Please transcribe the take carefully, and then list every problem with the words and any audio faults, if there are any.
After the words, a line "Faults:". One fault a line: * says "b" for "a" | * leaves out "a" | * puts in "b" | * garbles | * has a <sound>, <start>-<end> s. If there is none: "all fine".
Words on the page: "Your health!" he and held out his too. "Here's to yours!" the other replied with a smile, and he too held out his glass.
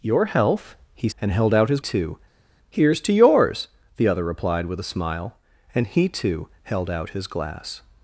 "Your health!" he and held out his too. "Here's to yours!" the other replied with a smile, and he too held out his glass.
Faults:
all fine